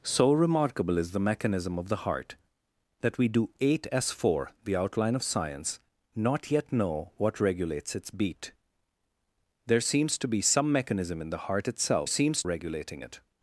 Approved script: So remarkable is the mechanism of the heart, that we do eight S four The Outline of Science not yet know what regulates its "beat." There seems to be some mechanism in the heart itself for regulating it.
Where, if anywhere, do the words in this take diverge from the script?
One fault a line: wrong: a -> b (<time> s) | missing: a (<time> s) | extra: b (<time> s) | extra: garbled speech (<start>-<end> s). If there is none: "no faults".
wrong: for -> seems (12.1 s)